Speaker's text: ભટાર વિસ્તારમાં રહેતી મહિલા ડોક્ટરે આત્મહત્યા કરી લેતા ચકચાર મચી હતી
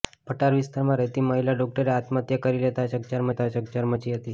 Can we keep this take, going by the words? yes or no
no